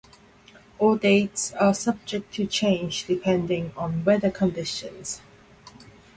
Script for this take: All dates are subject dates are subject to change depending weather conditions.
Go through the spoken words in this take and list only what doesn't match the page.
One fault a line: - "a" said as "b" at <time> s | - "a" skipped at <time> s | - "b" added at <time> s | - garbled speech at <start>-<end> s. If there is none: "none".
- "dates are subject" skipped at 2.3 s
- "on" added at 3.8 s